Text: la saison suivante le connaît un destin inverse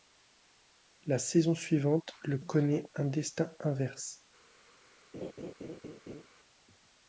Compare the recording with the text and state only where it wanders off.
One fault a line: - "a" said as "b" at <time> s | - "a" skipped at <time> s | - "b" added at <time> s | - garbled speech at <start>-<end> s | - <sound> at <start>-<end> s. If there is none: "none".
- laugh at 5.1-6.3 s